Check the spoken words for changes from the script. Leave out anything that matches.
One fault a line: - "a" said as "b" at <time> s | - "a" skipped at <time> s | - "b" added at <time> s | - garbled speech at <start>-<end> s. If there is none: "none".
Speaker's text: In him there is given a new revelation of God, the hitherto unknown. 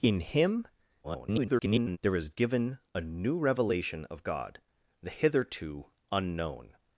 - garbled speech at 1.0-2.0 s